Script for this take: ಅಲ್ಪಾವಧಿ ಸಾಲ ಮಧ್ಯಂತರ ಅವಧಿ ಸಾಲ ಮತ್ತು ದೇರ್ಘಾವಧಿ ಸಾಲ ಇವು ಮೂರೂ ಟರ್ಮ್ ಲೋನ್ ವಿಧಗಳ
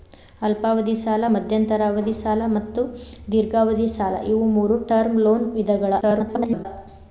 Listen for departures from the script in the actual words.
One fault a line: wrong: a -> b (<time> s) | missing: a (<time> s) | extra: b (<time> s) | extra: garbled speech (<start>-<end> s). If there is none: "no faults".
extra: garbled speech (6.0-6.7 s)